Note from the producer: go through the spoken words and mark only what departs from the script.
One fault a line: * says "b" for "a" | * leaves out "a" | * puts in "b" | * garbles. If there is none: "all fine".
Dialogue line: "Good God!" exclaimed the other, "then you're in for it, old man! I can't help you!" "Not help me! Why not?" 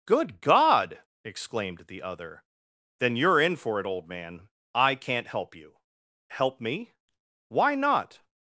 * leaves out "Not"